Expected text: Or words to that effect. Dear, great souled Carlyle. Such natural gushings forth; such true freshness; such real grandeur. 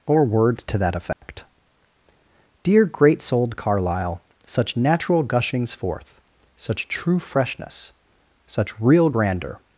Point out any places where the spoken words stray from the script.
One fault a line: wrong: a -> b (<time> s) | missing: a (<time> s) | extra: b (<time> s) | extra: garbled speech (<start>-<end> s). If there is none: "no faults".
no faults